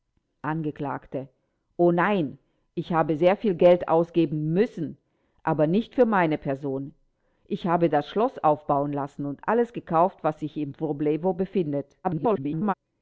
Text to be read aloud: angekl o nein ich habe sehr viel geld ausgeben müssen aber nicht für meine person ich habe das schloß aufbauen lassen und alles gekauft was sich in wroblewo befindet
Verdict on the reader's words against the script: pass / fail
fail